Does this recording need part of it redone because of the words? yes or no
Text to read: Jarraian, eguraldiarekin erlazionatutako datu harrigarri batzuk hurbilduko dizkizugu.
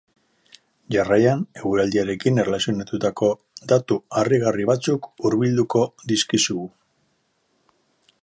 no